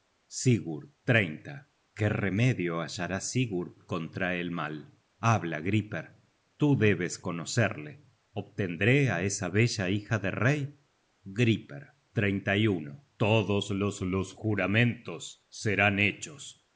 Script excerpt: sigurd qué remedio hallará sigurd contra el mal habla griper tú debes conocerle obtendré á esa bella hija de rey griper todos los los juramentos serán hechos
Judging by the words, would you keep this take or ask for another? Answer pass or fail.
pass